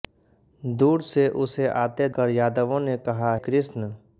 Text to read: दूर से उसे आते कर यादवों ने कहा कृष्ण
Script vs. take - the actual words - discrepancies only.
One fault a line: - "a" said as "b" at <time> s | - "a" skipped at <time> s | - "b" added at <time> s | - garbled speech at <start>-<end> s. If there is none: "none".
none